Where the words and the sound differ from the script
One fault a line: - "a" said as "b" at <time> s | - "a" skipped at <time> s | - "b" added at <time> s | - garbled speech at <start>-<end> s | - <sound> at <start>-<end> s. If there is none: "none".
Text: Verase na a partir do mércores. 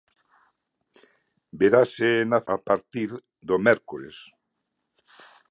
none